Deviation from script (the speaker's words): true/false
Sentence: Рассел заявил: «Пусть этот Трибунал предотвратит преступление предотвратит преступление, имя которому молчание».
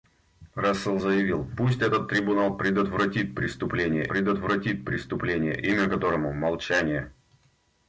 false